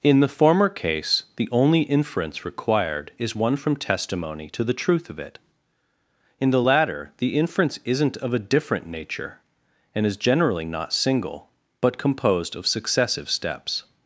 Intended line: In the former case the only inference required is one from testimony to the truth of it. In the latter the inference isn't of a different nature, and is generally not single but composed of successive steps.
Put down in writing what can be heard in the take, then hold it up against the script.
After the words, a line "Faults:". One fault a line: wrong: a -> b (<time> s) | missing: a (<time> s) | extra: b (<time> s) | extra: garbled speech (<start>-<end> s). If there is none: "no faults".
In the former case the only inference required is one from testimony to the truth of it. In the latter the inference isn't of a different nature, and is generally not single but composed of successive steps.
Faults:
no faults